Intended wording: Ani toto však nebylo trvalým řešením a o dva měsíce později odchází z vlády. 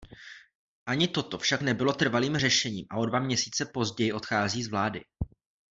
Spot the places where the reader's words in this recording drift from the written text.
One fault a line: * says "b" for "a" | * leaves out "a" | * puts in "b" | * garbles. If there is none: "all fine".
all fine